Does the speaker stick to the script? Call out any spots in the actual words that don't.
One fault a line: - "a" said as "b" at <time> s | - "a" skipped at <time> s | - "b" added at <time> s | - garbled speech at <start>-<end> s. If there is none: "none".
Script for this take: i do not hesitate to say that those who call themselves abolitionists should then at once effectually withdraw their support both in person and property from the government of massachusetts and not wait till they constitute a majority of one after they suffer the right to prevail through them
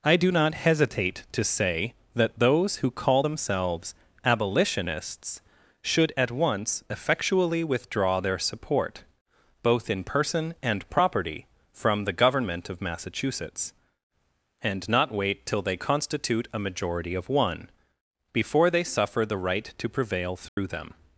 - "then" skipped at 6.1 s
- "after" said as "before" at 18.3 s